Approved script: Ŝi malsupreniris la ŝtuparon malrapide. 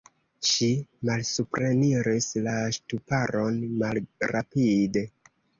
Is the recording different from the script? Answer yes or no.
no